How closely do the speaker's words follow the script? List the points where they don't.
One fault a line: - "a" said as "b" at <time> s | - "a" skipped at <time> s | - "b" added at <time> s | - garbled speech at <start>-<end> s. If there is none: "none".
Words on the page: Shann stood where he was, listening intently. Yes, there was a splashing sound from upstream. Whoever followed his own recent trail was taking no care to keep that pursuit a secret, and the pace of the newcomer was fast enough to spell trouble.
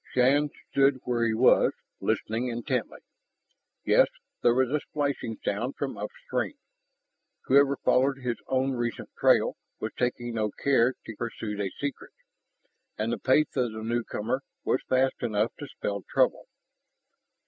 - "keep that" skipped at 11.2 s